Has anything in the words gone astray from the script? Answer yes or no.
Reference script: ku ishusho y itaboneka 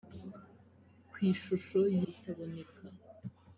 no